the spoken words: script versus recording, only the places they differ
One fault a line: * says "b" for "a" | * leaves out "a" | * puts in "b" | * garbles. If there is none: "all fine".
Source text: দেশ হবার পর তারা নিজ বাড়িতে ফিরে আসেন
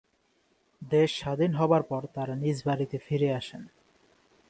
* puts in "স্বাধীন"